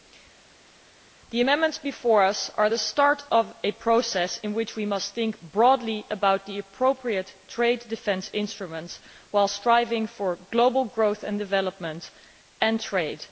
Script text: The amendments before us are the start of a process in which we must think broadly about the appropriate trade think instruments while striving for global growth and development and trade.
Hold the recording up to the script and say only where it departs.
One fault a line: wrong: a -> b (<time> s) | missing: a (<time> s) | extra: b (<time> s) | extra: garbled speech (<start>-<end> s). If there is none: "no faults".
wrong: think -> defence (7.9 s)